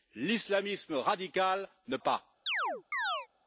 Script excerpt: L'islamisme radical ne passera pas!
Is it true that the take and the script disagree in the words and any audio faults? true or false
true